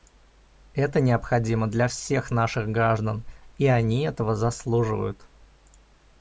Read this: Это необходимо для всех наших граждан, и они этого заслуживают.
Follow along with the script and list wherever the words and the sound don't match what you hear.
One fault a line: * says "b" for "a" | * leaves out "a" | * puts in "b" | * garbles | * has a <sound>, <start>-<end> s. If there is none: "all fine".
all fine